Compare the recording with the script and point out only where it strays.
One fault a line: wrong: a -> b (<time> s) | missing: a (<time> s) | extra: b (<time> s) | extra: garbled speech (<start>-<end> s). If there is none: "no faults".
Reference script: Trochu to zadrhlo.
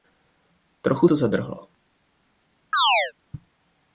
no faults